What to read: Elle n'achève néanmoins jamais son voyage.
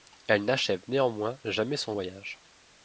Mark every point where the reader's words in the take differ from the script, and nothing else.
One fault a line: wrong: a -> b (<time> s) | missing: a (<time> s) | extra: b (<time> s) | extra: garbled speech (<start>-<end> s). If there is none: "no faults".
no faults